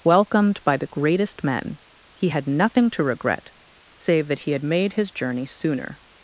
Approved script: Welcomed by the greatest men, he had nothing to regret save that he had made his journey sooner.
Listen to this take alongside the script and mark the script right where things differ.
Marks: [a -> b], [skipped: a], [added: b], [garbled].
Welcomed by the greatest men, he had nothing to regret save that he had made his journey sooner.